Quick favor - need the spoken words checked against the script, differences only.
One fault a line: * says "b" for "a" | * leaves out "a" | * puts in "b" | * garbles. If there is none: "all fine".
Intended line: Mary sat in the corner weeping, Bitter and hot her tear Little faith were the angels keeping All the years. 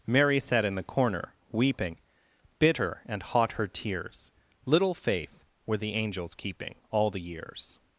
* says "tears" for "tear"